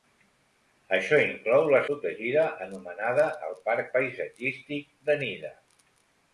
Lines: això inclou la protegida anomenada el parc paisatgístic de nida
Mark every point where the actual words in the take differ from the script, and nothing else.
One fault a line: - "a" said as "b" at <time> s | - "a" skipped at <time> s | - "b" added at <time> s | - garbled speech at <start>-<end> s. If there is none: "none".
none